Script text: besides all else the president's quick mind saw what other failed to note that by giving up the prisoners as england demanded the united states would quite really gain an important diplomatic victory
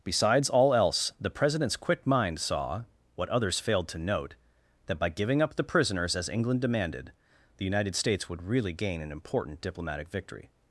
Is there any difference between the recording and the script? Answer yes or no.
yes